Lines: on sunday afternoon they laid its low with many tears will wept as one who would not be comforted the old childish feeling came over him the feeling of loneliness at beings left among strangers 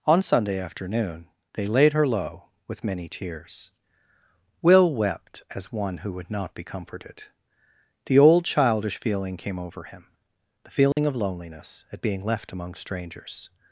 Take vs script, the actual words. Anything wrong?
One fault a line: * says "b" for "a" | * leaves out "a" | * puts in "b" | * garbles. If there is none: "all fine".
* says "her" for "its"
* says "being" for "beings"